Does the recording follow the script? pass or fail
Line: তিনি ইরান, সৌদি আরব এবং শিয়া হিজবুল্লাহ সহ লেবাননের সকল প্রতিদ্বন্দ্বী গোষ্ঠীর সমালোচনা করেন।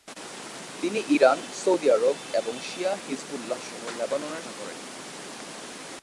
fail